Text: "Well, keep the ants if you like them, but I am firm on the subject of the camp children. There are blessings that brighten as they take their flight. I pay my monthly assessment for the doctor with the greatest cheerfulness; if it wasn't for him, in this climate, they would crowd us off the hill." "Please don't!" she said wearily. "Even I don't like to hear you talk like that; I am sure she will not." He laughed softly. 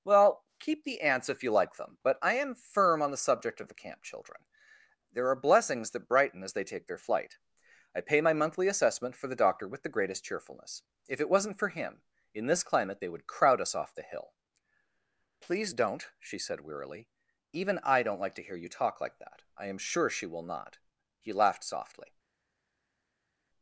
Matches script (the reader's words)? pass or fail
pass